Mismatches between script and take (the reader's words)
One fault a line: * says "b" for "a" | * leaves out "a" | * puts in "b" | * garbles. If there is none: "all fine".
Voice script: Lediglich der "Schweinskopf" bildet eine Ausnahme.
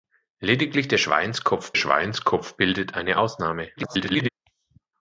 * puts in "schweinskopf"
* garbles